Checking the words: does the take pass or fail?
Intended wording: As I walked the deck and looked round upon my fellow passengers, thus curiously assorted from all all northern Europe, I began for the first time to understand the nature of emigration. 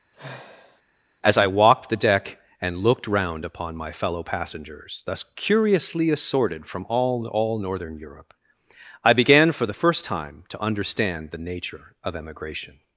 pass